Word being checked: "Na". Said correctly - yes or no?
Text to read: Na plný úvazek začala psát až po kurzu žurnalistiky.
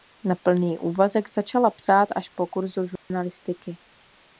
yes